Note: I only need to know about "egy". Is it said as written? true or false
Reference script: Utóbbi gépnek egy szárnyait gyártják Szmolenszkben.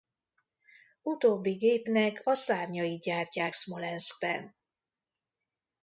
false